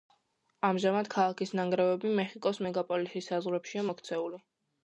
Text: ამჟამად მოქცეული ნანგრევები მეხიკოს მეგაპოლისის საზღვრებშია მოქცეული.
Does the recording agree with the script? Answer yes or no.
no